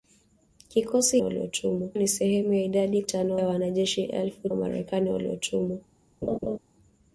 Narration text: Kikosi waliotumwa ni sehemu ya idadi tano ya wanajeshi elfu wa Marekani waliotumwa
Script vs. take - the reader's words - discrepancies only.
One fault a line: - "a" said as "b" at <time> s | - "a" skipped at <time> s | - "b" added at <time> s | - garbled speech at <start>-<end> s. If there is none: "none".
none